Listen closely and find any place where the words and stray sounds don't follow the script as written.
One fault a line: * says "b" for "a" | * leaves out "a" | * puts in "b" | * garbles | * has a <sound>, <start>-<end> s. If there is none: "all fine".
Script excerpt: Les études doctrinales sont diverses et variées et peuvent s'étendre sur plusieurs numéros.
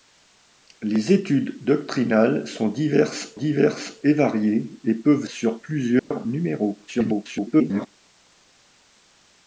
* puts in "diverses"
* leaves out "s'étendre"
* has a dropout, 6.0-6.1 s
* garbles